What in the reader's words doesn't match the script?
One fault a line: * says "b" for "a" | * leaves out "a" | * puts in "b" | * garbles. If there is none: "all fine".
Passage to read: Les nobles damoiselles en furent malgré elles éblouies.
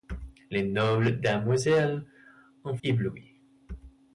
* leaves out "furent malgré elles"